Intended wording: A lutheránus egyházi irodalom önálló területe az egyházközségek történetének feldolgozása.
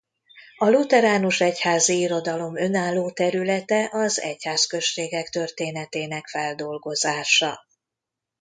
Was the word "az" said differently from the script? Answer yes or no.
no